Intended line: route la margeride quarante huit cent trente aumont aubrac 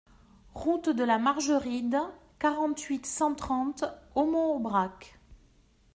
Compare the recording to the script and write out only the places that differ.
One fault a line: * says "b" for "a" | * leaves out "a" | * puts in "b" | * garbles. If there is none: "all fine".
* puts in "de"